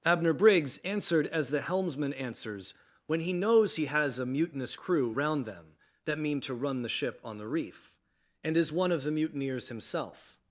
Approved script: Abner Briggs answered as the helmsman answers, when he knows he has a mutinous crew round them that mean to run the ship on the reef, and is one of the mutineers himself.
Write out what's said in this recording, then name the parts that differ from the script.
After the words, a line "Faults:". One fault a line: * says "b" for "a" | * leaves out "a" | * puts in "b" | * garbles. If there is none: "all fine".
Abner Briggs answered as the helmsman answers, when he knows he has a mutinous crew round them that mean to run the ship on the reef, and is one of the mutineers himself.
Faults:
all fine